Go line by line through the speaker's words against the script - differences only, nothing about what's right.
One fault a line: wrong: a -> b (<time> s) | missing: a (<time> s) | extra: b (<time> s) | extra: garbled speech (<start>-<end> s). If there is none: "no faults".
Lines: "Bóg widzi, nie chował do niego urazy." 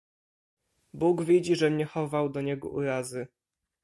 extra: żem (1.6 s)